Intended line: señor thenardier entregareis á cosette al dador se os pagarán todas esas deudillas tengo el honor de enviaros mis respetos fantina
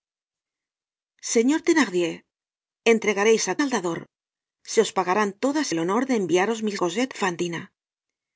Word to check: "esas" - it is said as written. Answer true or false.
false